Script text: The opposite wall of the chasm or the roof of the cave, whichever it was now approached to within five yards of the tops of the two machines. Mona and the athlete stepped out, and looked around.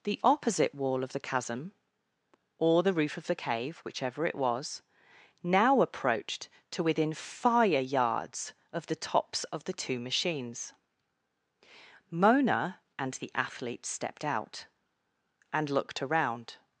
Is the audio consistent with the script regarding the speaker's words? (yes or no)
no